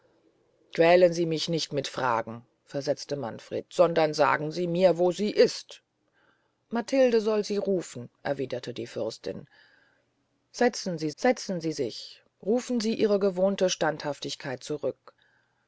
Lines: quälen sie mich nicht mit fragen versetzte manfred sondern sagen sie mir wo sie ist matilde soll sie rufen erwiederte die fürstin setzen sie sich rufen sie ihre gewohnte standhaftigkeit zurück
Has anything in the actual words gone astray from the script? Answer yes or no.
yes